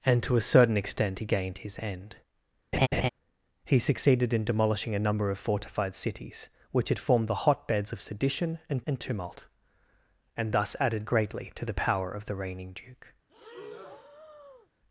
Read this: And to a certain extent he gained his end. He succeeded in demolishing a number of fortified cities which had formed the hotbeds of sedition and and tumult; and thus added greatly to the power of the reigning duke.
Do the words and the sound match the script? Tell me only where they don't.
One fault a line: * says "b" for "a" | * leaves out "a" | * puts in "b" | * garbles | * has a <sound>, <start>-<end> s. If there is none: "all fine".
* has a laugh, 2.7-3.1 s
* has a breath, 13.3-14.7 s